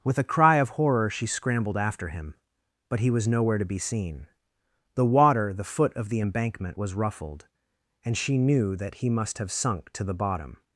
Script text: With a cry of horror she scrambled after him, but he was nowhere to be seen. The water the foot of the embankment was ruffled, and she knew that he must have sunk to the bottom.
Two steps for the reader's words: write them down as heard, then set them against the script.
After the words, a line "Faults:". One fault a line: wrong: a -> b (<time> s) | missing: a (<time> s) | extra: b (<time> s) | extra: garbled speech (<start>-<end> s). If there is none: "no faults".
With a cry of horror she scrambled after him, but he was nowhere to be seen. The water the foot of the embankment was ruffled, and she knew that he must have sunk to the bottom.
Faults:
no faults